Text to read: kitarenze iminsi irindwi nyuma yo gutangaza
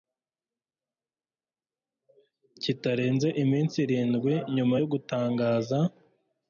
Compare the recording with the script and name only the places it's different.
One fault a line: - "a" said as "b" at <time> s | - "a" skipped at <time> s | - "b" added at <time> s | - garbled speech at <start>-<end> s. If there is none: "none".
none